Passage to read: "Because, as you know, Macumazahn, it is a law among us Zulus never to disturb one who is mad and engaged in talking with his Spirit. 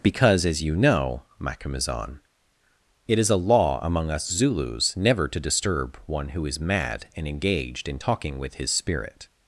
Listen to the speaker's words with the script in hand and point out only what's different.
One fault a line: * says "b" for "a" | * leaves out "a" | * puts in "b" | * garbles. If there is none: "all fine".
all fine